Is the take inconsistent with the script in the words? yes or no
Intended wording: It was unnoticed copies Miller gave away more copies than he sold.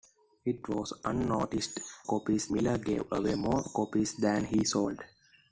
no